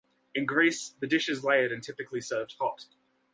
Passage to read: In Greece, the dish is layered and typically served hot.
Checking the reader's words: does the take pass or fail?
pass